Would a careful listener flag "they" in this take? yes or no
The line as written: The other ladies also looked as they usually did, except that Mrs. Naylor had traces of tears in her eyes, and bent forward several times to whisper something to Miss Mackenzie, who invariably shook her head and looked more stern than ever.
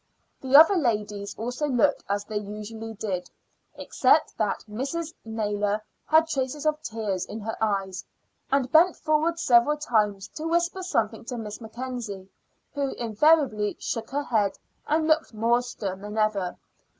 no